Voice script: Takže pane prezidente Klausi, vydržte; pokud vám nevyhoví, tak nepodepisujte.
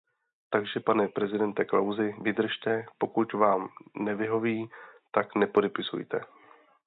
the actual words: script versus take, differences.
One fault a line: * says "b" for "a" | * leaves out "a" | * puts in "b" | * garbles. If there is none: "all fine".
all fine